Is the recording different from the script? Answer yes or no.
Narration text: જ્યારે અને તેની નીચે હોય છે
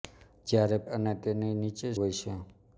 no